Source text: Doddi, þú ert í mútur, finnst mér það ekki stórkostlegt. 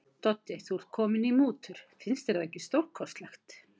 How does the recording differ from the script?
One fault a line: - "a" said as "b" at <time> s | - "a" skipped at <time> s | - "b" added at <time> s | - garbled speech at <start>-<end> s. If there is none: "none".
- "kominn" added at 1.0 s
- "mér" said as "þér" at 2.3 s